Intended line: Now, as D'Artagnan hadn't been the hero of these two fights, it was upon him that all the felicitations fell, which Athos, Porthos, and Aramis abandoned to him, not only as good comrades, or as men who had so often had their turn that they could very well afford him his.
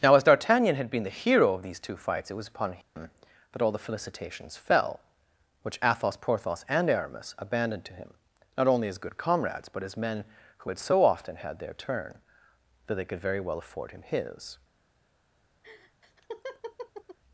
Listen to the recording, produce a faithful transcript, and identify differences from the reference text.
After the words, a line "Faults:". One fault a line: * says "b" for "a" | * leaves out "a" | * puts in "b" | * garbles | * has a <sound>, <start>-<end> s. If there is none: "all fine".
Now, as D'Artagnan had been the hero of these two fights, it was upon him that all the felicitations fell, which Athos, Porthos, and Aramis abandoned to him, not only as good comrades, but as men who had so often had their turn that they could very well afford him his.
Faults:
* says "had" for "hadn't"
* has a dropout, 2.8-3.0 s
* says "but" for "or"
* has a laugh, 15.6-17.2 s